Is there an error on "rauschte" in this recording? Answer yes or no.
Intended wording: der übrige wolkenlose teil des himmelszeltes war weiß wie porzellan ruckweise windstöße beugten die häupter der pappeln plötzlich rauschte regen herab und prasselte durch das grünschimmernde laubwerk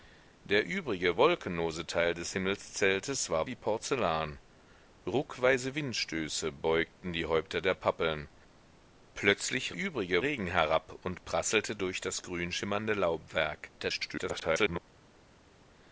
yes